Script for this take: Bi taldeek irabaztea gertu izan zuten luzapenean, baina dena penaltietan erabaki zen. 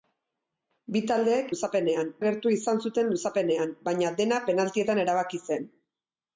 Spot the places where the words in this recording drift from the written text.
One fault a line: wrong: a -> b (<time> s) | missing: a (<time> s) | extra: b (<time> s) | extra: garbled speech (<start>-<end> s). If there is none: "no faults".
wrong: irabaztea -> luzapenean (1.5 s)